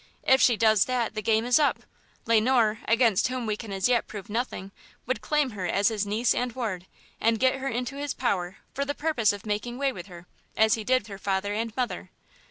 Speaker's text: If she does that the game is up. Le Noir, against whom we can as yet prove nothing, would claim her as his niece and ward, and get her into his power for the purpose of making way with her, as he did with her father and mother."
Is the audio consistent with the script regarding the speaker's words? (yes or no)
no